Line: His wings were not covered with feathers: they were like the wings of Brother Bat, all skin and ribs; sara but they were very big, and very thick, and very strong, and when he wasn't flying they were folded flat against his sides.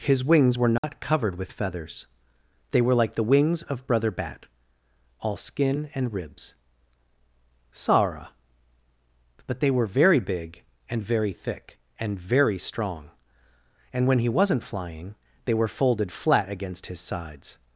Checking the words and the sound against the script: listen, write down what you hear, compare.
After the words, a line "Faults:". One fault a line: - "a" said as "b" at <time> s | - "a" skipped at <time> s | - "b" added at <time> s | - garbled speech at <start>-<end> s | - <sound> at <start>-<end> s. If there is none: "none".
His wings were not covered with feathers: they were like the wings of Brother Bat, all skin and ribs; sara but they were very big, and very thick, and very strong, and when he wasn't flying they were folded flat against his sides.
Faults:
- dropout at 0.8-0.8 s